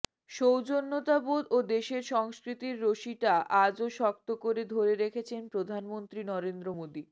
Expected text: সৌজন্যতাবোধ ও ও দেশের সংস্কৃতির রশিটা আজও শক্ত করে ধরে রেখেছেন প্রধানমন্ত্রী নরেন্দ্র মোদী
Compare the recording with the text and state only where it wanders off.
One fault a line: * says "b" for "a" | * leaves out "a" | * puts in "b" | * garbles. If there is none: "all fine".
* leaves out "ও"